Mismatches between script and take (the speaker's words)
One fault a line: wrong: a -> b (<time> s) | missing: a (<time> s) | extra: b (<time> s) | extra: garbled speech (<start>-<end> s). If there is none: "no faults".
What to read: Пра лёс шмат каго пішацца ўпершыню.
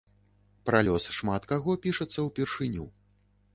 no faults